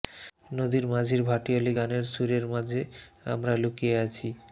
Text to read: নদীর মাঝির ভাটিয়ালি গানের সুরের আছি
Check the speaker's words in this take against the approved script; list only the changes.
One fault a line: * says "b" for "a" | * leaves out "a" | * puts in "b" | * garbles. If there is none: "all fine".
* puts in "মাঝে আমরা লুকিয়ে"